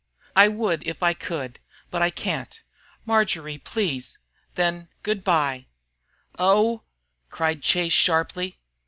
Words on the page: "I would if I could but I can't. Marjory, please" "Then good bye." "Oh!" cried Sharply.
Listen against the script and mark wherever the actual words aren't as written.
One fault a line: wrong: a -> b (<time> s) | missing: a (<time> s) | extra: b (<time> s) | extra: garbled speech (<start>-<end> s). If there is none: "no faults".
extra: Chase (7.6 s)